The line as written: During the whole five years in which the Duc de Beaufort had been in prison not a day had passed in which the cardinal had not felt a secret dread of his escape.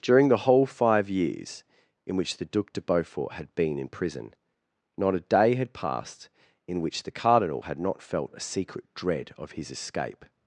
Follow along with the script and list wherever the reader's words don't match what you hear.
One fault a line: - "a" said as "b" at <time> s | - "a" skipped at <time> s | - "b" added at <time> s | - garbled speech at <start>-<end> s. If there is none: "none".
none